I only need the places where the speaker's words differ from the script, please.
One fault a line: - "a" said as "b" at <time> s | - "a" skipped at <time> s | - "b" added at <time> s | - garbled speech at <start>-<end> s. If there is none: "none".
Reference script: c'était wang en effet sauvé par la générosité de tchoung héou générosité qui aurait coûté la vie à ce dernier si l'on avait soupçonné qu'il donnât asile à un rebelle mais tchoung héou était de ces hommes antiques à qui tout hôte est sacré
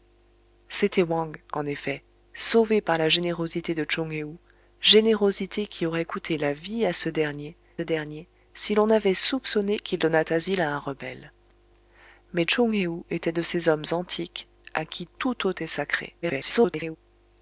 - "dernier" added at 7.8 s
- garbled speech at 16.2-17.0 s